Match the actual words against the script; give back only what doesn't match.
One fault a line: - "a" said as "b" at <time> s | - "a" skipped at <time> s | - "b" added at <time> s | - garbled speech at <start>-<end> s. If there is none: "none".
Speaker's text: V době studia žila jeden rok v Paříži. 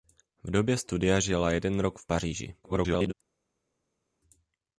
- garbled speech at 2.6-3.1 s